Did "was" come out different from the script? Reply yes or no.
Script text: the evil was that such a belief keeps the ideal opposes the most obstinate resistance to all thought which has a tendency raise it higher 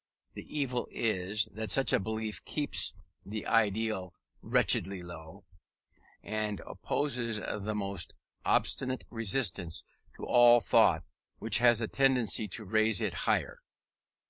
yes